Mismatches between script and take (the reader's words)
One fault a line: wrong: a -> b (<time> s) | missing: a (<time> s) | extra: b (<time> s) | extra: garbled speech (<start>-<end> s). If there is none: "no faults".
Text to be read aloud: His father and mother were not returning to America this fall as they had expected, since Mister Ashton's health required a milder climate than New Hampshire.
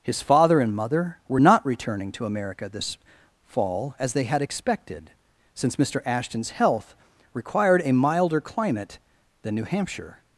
no faults